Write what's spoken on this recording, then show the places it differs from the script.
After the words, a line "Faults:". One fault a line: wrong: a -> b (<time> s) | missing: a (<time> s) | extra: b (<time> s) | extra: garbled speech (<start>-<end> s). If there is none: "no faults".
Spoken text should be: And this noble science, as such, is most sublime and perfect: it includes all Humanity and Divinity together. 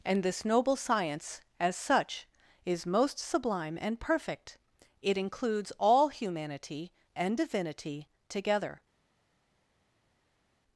And this noble science, as such, is most sublime and perfect: it includes all Humanity and Divinity together.
Faults:
no faults